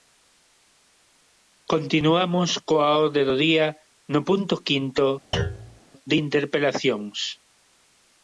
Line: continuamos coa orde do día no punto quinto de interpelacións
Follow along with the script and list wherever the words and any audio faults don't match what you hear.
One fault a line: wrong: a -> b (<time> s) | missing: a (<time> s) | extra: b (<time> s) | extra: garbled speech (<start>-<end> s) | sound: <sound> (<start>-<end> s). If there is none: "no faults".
sound: thud (5.3-5.8 s)